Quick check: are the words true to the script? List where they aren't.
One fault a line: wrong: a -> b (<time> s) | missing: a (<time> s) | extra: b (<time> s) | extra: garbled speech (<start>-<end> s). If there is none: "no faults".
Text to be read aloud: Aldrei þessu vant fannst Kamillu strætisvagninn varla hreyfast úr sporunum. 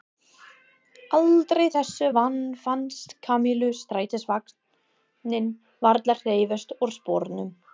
no faults